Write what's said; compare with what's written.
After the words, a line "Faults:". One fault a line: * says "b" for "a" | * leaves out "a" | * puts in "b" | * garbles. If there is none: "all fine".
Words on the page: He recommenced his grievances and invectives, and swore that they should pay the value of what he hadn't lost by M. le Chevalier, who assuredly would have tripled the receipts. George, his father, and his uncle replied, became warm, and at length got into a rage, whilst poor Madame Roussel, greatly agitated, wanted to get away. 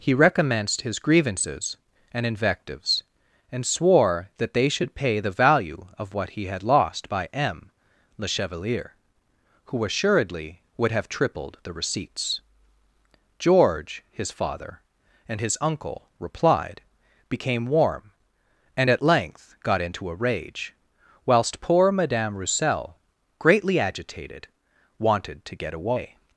He recommenced his grievances and invectives, and swore that they should pay the value of what he had lost by M. le Chevalier, who assuredly would have tripled the receipts. George, his father, and his uncle replied, became warm, and at length got into a rage, whilst poor Madame Roussel, greatly agitated, wanted to get away.
Faults:
* says "had" for "hadn't"